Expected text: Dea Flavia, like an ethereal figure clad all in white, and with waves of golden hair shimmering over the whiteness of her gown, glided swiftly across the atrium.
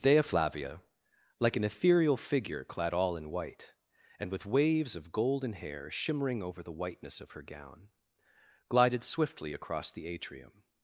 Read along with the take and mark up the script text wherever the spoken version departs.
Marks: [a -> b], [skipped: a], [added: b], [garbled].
Dea Flavia, like an ethereal figure clad all in white, and with waves of golden hair shimmering over the whiteness of her gown, glided swiftly across the atrium.